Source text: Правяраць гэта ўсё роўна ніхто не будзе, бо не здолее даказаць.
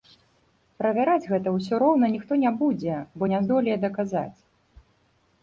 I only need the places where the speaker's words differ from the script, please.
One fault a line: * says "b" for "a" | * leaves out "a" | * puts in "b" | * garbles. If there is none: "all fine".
all fine